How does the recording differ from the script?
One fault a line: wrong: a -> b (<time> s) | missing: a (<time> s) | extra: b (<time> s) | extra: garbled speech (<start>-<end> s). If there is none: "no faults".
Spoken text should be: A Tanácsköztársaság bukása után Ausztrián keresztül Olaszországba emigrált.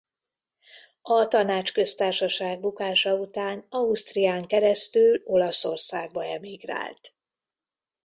no faults